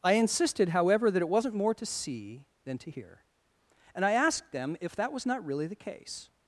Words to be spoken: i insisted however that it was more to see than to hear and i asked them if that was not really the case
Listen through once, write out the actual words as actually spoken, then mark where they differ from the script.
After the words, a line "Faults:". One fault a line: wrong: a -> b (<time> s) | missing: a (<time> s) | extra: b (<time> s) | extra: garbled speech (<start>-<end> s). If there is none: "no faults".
i insisted however that it wasn't more to see than to hear and i asked them if that was not really the case
Faults:
wrong: was -> wasn't (1.3 s)